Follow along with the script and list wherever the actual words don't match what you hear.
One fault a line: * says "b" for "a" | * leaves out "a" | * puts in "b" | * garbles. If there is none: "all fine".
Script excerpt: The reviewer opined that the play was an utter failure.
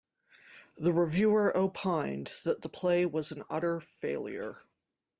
all fine